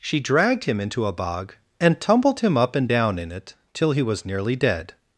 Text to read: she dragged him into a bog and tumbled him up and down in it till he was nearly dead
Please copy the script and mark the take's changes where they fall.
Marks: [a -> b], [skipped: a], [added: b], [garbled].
she dragged him into a bog and tumbled him up and down in it till he was nearly dead